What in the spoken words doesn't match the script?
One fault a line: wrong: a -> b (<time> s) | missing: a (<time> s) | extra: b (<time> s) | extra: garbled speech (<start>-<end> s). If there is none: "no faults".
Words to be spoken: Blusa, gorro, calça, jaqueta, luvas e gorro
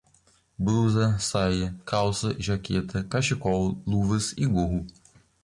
wrong: gorro -> saia (1.2 s)
extra: cachecol (3.0 s)